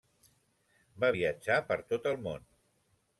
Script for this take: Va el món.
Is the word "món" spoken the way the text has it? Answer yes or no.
yes